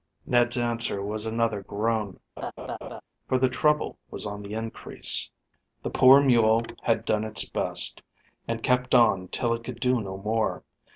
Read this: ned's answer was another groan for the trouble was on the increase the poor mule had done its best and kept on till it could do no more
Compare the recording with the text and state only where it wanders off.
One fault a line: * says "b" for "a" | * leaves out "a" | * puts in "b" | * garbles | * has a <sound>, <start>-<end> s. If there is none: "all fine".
* has a laugh, 2.4-3.0 s